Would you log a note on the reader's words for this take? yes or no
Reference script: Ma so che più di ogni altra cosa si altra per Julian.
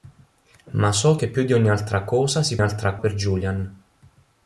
no